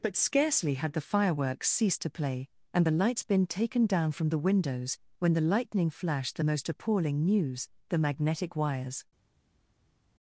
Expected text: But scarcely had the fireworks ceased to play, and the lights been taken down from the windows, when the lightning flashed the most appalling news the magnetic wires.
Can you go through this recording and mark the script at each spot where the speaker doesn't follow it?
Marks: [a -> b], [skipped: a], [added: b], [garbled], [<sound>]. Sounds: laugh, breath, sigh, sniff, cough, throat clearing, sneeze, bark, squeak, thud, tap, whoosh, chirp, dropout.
But scarcely had the fireworks ceased to play, and the lights been taken down from the windows, when the lightning flashed the most appalling news the magnetic wires.